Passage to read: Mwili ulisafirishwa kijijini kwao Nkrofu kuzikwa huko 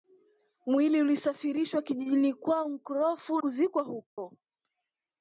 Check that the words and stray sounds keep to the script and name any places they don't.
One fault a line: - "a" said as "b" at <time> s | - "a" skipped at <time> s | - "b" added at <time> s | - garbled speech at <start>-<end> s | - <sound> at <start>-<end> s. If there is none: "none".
- dropout at 4.1-4.2 s